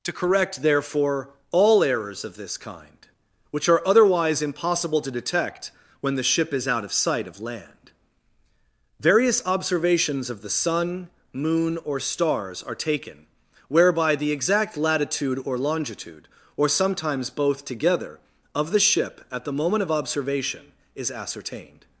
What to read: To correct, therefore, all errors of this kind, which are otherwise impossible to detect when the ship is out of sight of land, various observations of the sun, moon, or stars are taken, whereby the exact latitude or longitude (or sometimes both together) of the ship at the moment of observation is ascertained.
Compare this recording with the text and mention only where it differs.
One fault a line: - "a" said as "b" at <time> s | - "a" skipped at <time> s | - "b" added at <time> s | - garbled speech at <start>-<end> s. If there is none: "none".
none